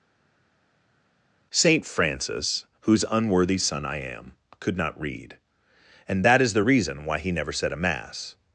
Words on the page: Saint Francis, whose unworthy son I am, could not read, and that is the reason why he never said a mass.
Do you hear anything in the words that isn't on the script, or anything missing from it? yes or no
no